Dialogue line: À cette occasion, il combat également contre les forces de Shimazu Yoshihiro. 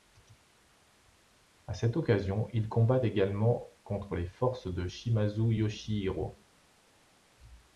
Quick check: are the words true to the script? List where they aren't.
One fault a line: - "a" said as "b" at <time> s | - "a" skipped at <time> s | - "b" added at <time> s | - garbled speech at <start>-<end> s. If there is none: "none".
none